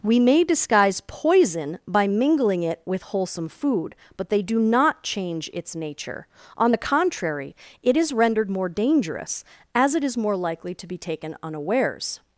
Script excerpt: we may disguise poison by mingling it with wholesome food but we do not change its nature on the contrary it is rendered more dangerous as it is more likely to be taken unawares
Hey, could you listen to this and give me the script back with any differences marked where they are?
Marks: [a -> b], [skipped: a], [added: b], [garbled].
we may disguise poison by mingling it with wholesome food but [we -> they] do not change its nature on the contrary it is rendered more dangerous as it is more likely to be taken unawares